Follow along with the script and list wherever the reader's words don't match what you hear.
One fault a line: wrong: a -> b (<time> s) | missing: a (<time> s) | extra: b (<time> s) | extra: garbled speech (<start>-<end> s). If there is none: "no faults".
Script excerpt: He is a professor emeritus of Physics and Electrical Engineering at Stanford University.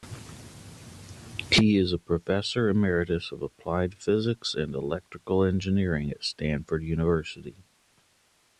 extra: Applied (3.4 s)